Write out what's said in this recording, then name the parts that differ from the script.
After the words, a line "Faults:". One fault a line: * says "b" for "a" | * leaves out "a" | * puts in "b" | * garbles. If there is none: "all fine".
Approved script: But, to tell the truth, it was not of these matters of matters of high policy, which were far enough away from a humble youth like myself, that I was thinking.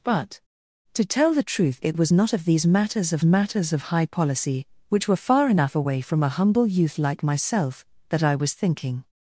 But, to tell the truth, it was not of these matters of matters of high policy, which were far enough away from a humble youth like myself, that I was thinking.
Faults:
all fine